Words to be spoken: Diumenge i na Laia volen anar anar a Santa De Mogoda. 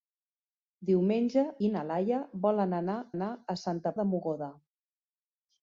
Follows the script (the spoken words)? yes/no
yes